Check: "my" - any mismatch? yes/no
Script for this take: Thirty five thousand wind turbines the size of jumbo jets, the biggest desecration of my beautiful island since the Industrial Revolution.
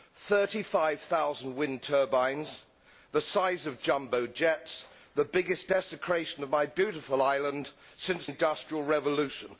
no